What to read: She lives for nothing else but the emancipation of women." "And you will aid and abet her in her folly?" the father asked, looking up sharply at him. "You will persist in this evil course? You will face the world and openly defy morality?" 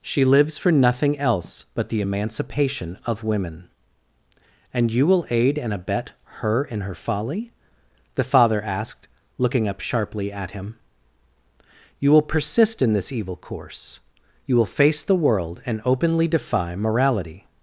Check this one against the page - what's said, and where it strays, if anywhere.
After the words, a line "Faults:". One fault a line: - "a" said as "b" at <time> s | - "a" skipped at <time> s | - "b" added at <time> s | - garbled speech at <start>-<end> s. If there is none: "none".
She lives for nothing else but the emancipation of women." "And you will aid and abet her in her folly?" the father asked, looking up sharply at him. "You will persist in this evil course? You will face the world and openly defy morality?"
Faults:
none